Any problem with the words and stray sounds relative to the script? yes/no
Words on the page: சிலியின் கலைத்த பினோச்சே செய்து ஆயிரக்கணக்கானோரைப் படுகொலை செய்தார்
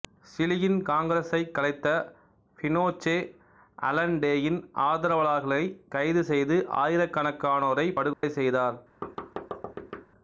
yes